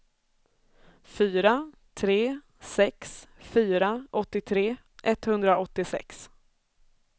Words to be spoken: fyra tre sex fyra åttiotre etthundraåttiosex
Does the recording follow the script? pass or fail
pass